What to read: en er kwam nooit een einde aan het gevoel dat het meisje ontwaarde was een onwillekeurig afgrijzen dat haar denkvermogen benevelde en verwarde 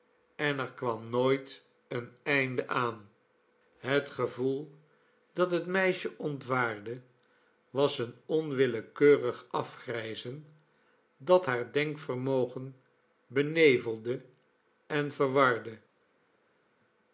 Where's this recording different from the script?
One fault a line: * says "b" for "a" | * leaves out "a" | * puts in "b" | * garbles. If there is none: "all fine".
all fine